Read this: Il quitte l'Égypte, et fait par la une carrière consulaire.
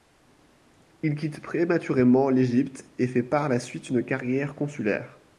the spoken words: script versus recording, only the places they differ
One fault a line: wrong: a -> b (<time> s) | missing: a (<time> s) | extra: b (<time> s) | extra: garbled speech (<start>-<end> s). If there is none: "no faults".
extra: prématurément (1.4 s)
extra: suite (3.6 s)